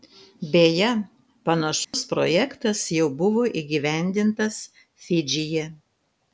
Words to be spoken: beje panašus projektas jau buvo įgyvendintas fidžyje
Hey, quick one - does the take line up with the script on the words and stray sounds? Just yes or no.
no